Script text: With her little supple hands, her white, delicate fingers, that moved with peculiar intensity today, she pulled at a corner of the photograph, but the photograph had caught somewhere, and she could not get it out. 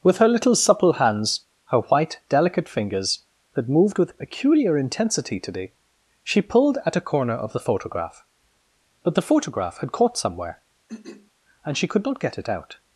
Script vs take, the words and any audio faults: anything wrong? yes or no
yes